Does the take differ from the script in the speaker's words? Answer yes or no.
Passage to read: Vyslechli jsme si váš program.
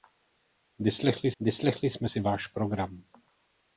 yes